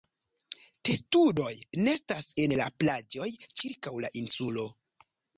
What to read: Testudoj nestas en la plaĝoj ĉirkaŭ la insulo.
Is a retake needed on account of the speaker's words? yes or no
no